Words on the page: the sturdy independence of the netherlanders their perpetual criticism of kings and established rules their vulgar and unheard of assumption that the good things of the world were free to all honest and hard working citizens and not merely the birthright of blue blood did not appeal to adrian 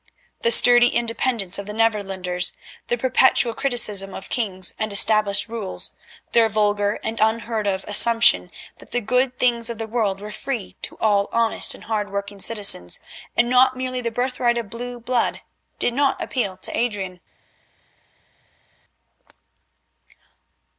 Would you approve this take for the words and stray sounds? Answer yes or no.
yes